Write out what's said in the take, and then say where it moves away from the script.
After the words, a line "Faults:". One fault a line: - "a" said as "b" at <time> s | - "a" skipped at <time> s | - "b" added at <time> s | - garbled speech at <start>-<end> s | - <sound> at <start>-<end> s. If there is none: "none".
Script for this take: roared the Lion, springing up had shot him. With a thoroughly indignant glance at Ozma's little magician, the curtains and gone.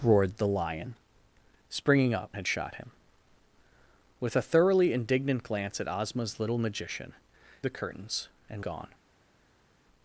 roared the Lion, springing up had shot him. With a thoroughly indignant glance at Ozma's little magician, the curtains and gone.
Faults:
none